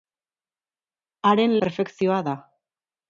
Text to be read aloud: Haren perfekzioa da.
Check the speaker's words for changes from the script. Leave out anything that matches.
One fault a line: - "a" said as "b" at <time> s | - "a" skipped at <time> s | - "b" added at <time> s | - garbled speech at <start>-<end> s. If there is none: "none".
none